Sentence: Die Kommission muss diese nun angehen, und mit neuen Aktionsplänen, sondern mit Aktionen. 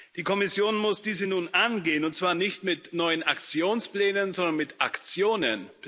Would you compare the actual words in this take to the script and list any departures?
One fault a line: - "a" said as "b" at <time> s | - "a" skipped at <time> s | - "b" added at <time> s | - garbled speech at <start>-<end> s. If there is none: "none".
- "zwar nicht" added at 2.1 s